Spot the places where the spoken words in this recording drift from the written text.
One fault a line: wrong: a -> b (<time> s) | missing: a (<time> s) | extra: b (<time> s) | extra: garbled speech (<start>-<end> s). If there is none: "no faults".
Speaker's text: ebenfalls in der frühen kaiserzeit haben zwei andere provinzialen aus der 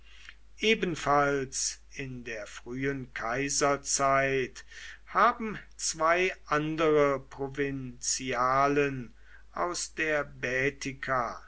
no faults